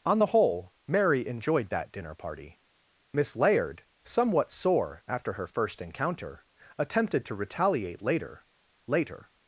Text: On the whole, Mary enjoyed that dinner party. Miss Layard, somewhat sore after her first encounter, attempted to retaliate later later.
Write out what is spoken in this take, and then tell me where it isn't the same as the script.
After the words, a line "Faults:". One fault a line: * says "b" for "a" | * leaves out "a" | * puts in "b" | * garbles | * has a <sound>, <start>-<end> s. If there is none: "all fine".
On the whole, Mary enjoyed that dinner party. Miss Layard, somewhat sore after her first encounter, attempted to retaliate later later.
Faults:
all fine